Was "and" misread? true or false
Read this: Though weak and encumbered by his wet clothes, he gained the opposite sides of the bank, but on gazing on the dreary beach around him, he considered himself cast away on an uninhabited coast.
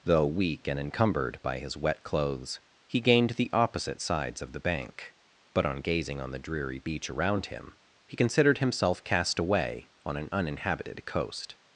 false